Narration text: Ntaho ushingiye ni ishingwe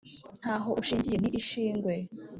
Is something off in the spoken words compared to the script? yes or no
no